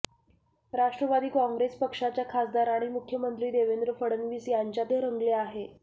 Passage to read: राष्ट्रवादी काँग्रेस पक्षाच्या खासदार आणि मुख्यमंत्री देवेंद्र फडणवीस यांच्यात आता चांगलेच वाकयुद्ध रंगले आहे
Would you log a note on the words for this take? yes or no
yes